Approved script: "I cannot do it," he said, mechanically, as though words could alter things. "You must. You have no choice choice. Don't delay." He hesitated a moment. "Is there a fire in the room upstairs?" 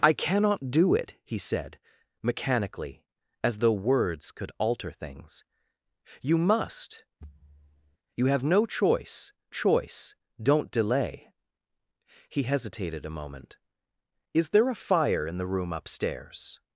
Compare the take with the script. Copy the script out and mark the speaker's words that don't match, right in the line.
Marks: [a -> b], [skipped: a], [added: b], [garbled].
"I cannot do it," he said, mechanically, as though words could alter things. "You must. You have no choice choice. Don't delay." He hesitated a moment. "Is there a fire in the room upstairs?"